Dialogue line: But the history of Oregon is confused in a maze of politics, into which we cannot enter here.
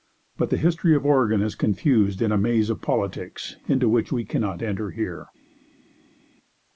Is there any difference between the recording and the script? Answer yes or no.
no